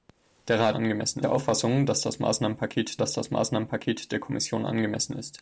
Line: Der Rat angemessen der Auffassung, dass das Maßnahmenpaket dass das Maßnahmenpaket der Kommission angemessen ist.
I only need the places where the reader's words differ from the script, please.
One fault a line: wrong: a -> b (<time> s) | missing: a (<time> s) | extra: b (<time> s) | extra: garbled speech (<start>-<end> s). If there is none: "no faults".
no faults